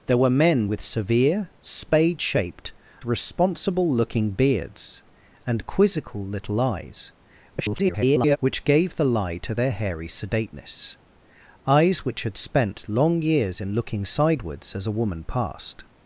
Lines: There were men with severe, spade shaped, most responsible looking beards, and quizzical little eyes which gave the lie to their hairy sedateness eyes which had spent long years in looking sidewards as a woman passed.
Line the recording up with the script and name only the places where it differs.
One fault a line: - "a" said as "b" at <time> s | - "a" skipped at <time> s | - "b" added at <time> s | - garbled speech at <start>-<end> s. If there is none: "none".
- "most" skipped at 2.7 s
- garbled speech at 7.5-8.4 s